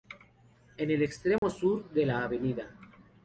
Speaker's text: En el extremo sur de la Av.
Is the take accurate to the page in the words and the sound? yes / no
no